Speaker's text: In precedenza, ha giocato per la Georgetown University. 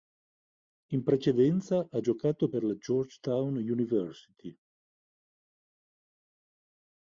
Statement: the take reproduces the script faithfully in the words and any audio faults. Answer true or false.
true